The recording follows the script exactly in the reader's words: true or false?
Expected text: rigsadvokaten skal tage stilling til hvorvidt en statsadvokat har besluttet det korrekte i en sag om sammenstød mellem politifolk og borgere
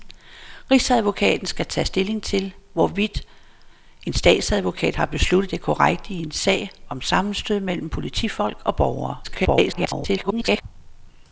false